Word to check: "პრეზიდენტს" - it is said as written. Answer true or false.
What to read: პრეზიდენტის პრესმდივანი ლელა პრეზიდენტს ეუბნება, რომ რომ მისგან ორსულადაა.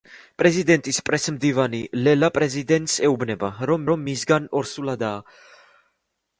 true